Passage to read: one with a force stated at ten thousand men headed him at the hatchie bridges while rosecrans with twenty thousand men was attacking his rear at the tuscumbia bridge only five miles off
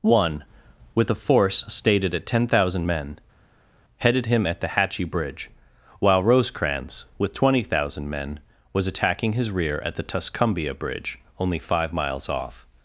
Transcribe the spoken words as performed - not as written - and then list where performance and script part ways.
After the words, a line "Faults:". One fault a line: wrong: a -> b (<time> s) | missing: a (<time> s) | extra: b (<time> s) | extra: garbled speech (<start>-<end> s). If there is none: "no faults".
one with a force stated at ten thousand men headed him at the hatchie bridge while rosecrans with twenty thousand men was attacking his rear at the tuscumbia bridge only five miles off
Faults:
wrong: bridges -> bridge (5.1 s)